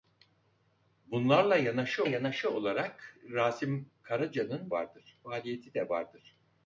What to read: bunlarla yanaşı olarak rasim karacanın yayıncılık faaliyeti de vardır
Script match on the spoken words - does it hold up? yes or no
no